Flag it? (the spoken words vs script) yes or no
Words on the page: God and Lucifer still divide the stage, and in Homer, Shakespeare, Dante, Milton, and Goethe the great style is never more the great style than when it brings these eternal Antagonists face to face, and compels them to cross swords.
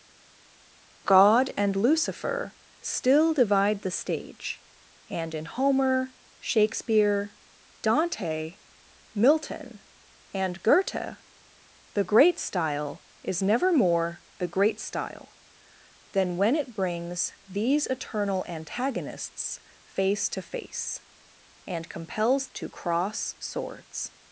yes